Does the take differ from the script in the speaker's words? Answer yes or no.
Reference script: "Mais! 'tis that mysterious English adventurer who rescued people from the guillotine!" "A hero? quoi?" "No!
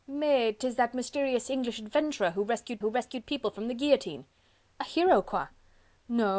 yes